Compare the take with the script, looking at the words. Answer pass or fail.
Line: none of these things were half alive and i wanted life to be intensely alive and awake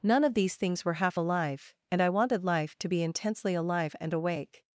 pass